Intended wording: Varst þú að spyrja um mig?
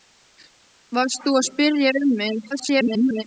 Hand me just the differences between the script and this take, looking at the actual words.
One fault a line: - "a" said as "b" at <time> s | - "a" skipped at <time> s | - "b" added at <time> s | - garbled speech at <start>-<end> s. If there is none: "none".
- garbled speech at 2.5-3.2 s